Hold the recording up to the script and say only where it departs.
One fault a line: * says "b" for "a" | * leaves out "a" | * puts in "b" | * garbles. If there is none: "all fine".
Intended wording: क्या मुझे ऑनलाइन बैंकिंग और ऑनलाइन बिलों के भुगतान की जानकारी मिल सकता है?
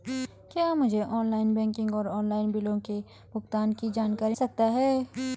* leaves out "मिल"